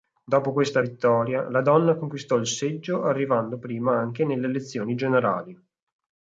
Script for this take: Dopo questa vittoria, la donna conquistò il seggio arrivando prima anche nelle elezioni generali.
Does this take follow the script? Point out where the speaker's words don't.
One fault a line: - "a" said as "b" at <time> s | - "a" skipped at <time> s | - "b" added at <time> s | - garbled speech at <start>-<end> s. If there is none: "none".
none